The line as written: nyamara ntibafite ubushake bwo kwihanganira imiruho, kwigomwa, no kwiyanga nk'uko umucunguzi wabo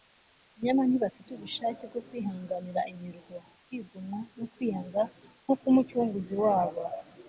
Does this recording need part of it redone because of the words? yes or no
no